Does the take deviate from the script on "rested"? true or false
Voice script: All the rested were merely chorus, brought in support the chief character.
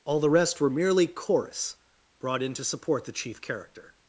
true